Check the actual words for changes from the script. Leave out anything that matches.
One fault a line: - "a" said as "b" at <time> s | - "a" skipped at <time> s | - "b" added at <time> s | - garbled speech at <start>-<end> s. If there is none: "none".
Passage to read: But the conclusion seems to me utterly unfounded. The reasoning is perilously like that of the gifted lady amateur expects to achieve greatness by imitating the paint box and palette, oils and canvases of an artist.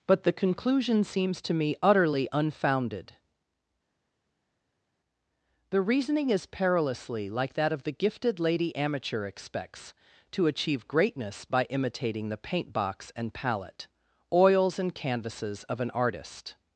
none